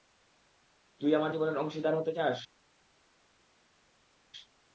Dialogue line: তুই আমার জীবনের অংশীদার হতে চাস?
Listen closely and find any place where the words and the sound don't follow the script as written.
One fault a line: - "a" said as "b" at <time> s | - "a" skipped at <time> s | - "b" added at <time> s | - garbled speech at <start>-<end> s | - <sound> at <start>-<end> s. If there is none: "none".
none